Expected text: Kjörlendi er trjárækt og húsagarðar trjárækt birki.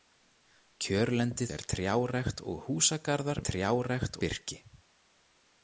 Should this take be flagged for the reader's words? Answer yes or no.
no